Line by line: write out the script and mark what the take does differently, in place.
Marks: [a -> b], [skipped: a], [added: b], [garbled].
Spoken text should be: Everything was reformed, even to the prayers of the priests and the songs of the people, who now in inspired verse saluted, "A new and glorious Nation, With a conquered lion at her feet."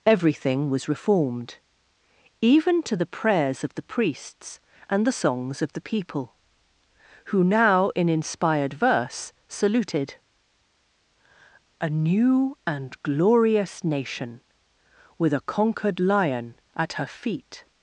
Everything was reformed, even to the prayers of the priests and the songs of the people, who now in inspired verse saluted, "A new and glorious Nation, With a conquered lion at her feet."